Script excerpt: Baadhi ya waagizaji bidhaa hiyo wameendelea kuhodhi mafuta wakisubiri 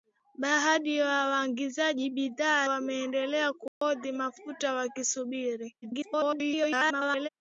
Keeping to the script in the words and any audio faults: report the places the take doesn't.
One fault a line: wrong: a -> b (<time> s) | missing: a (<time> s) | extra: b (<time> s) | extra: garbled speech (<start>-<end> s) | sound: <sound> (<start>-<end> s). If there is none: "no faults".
missing: hiyo (2.7 s)
sound: dropout (3.7-3.8 s)
extra: garbled speech (5.8-7.3 s)